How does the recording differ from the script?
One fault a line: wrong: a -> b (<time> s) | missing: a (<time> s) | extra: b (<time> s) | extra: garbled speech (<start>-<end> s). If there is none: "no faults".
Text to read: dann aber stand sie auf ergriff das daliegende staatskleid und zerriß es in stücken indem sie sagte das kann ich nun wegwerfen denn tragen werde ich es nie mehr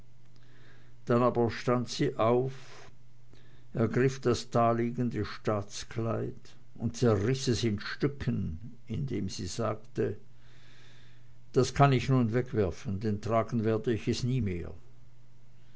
no faults